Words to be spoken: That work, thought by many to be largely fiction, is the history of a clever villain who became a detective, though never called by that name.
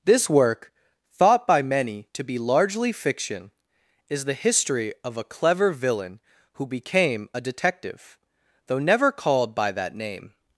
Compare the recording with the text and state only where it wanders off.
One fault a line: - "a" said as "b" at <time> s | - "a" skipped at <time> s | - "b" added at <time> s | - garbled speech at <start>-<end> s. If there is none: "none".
- "That" said as "This" at 0.0 s